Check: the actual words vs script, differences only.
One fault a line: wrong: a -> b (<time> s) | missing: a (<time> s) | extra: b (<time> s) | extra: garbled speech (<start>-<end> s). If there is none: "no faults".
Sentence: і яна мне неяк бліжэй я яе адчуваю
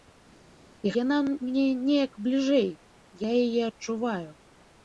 no faults